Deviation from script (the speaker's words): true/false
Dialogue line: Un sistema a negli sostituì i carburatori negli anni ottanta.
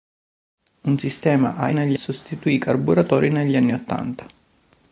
false